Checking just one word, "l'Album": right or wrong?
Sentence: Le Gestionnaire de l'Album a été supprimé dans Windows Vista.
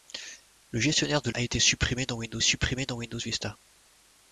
wrong